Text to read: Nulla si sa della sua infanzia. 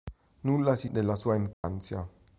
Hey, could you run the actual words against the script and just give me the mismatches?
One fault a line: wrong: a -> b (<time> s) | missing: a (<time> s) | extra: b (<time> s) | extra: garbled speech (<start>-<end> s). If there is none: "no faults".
missing: sa (0.9 s)